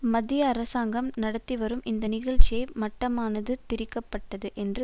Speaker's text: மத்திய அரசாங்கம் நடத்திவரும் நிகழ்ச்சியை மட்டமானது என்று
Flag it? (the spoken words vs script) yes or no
yes